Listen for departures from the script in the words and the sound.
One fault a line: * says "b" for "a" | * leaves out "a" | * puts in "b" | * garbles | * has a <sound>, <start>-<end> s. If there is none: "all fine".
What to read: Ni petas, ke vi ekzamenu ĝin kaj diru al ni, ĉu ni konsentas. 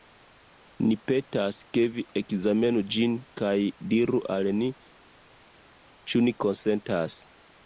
all fine